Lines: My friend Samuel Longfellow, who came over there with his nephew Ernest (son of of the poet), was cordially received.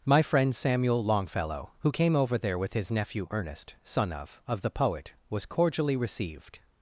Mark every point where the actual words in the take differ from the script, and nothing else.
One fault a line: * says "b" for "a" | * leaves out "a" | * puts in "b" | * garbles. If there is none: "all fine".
all fine